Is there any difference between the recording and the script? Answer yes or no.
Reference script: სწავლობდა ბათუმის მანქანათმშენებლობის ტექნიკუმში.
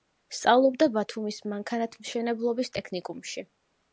no